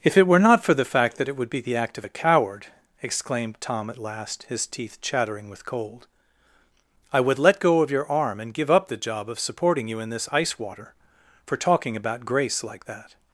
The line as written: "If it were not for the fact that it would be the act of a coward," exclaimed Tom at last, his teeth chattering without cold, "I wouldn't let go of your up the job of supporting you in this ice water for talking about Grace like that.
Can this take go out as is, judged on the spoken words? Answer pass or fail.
fail